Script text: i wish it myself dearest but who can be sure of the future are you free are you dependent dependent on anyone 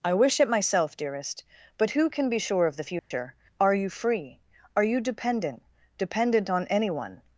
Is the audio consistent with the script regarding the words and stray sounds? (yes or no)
no